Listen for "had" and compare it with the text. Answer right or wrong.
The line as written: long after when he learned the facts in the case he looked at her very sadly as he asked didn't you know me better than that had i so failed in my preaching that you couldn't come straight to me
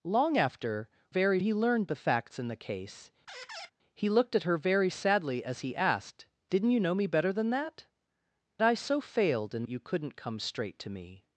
wrong